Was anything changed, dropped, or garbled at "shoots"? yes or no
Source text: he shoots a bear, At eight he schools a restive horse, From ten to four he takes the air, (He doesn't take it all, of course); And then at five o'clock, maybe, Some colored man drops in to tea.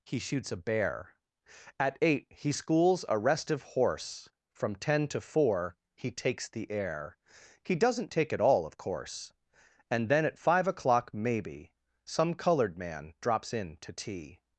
no